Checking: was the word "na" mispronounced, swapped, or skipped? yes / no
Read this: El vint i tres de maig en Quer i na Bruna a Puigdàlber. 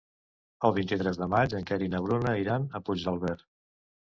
no